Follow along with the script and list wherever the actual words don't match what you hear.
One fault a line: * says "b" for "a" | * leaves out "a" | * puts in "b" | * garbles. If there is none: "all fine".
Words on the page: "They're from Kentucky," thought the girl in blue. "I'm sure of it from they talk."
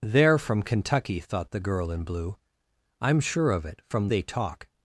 all fine